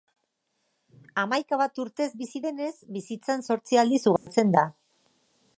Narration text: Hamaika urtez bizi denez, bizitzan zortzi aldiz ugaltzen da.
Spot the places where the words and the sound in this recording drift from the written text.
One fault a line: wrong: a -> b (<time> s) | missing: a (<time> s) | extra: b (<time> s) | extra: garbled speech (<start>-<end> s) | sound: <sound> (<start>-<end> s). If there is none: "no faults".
extra: bat (1.6 s)
sound: dropout (4.2-4.3 s)